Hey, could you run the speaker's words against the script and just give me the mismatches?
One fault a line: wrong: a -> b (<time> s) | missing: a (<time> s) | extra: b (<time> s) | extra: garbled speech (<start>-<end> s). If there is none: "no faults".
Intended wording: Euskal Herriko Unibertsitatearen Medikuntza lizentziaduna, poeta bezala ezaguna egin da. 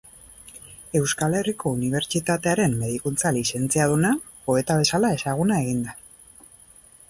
no faults